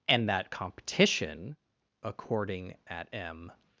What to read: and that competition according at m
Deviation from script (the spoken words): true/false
false